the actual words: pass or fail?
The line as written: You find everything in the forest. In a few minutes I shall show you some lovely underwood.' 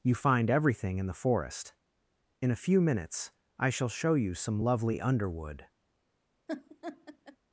pass